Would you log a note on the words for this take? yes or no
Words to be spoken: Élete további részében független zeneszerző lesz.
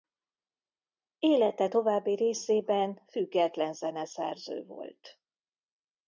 yes